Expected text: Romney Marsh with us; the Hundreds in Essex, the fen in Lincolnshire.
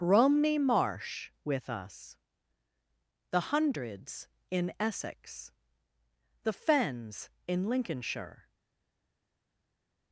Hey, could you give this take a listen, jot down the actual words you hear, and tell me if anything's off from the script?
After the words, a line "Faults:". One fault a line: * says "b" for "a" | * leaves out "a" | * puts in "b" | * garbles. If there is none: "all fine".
Romney Marsh with us; the Hundreds in Essex, the fens in Lincolnshire.
Faults:
* says "fens" for "fen"